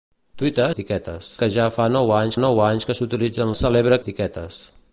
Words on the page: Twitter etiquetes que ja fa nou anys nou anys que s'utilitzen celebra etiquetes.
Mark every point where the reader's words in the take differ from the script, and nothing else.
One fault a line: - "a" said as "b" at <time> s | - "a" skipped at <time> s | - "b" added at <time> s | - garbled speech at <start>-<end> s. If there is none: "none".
none